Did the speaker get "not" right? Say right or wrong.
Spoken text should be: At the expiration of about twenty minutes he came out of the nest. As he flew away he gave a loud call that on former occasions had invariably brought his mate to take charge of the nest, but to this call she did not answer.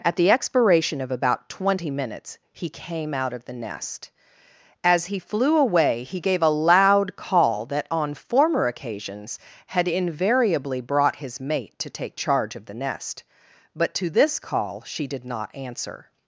right